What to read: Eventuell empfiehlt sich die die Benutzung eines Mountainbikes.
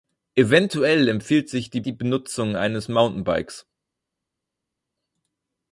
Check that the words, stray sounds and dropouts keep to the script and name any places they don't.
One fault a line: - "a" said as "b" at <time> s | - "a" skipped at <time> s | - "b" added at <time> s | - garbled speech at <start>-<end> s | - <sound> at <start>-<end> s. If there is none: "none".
none